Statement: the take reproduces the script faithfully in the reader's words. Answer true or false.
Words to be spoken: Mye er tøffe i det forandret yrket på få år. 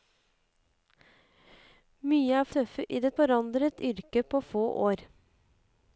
true